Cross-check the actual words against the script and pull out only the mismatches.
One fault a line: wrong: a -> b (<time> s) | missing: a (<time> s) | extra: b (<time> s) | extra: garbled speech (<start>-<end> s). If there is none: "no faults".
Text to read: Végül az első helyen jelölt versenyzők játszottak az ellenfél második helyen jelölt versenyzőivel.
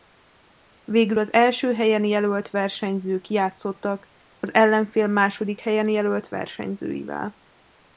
no faults